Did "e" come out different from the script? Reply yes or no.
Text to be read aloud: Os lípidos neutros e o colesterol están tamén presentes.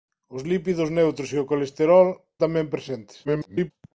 no